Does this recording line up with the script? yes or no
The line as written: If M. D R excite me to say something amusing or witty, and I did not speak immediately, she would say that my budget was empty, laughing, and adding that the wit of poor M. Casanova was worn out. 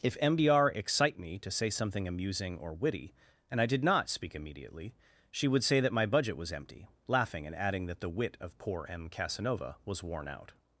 yes